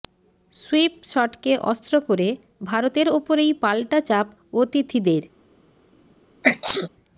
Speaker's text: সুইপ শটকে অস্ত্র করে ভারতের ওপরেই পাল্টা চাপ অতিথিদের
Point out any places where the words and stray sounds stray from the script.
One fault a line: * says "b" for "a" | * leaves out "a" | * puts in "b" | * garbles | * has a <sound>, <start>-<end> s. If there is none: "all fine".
* has a sneeze, 6.4-6.9 s